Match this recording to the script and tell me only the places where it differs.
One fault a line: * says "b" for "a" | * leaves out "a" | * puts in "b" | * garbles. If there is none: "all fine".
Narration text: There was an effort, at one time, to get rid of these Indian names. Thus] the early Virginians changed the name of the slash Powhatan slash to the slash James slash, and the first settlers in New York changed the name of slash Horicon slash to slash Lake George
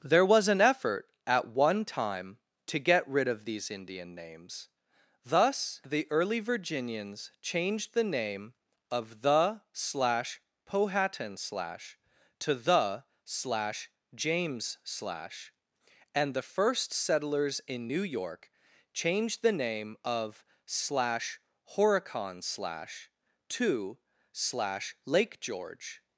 all fine